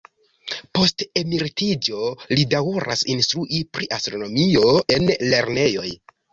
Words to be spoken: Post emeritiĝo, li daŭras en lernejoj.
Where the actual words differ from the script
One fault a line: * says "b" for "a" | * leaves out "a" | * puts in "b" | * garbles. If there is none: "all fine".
* puts in "instrui pri astronomio"